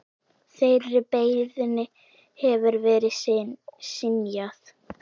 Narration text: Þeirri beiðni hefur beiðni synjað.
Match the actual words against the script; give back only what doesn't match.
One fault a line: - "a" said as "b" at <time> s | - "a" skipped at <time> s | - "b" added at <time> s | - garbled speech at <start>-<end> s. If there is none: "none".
- "beiðni" said as "verið" at 2.9 s